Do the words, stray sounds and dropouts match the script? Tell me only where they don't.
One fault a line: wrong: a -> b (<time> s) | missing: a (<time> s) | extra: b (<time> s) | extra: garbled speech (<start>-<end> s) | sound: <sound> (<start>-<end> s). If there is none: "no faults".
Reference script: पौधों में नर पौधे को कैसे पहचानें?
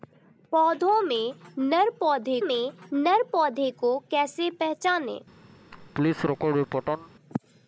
extra: में नर पौधे (2.4 s)
sound: laugh (5.7-7.1 s)